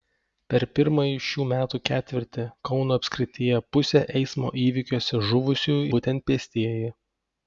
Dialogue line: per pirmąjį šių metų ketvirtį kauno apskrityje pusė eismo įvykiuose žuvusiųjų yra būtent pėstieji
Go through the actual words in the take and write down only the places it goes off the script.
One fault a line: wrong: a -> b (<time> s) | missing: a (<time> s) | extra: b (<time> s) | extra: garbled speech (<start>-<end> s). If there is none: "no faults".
missing: yra (5.8 s)